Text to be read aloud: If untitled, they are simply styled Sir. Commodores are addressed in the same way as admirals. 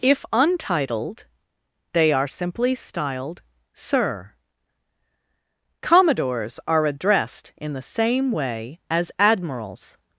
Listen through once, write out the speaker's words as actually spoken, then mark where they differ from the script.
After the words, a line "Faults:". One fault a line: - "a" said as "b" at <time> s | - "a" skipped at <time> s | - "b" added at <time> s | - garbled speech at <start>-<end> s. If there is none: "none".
If untitled, they are simply styled Sir. Commodores are addressed in the same way as admirals.
Faults:
none